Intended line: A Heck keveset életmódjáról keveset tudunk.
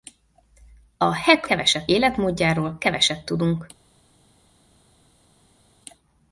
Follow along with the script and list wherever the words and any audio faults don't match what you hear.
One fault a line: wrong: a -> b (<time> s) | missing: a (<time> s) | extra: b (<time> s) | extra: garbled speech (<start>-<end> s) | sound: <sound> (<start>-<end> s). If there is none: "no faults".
no faults